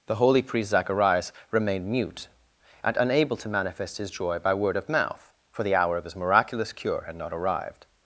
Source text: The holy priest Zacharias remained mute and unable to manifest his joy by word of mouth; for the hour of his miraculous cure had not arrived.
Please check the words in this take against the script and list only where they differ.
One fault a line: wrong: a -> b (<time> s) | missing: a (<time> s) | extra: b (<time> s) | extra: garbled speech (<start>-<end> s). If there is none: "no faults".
no faults